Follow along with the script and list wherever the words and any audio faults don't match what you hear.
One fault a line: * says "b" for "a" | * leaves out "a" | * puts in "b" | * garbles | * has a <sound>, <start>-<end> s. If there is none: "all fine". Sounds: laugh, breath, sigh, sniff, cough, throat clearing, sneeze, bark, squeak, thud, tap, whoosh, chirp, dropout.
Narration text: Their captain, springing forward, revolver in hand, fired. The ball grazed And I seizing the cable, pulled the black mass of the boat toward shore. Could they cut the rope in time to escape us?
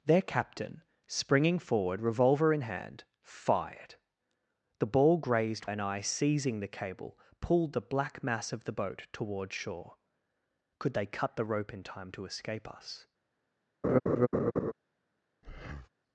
* has a laugh, 13.8-14.7 s
* has a breath, 15.4-15.9 s